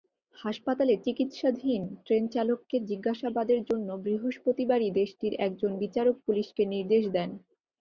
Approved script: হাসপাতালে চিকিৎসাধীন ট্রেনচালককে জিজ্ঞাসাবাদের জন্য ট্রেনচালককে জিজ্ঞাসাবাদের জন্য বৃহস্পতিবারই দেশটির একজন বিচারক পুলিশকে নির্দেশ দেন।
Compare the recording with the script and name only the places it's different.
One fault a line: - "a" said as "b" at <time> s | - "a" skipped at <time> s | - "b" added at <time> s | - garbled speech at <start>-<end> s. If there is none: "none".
- "ট্রেনচালককে জিজ্ঞাসাবাদের জন্য" skipped at 3.9 s